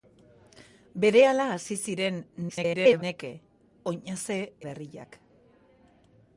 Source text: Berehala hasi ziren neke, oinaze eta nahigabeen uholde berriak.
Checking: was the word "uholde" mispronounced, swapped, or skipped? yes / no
yes